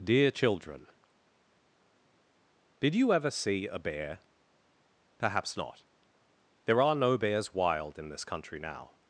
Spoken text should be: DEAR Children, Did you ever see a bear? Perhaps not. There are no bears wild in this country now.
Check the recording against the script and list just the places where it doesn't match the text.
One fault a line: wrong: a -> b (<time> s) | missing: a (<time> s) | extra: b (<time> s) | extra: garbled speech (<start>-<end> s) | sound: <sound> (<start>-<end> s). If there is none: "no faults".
no faults